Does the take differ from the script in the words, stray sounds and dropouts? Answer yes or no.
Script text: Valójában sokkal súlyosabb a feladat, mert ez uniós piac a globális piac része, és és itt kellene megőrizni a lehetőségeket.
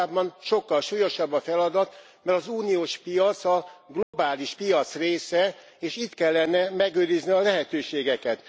yes